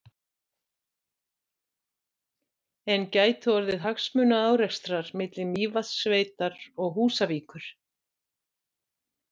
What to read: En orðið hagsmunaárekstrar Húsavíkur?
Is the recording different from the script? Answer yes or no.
yes